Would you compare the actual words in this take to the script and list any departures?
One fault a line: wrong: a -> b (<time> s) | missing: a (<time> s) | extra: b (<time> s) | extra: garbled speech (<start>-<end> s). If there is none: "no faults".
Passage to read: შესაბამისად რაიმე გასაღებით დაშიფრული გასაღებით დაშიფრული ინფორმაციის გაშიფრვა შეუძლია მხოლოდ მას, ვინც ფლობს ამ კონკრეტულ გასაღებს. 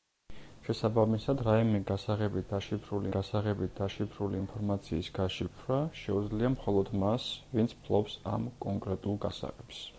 no faults